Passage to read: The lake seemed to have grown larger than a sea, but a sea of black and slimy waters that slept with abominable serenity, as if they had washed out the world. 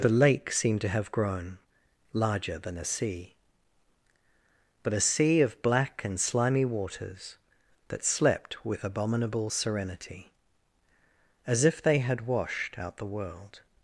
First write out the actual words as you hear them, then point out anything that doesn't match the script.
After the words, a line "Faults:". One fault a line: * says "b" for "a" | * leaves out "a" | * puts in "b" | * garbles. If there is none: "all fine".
The lake seemed to have grown larger than a sea, but a sea of black and slimy waters that slept with abominable serenity, as if they had washed out the world.
Faults:
all fine